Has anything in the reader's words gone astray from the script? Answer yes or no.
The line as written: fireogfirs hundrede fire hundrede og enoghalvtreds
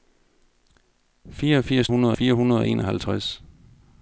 no